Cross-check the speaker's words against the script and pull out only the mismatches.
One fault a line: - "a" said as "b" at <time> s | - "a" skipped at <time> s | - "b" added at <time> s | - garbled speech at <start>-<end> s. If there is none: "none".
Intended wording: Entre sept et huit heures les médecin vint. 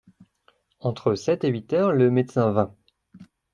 - "les" said as "le" at 1.9 s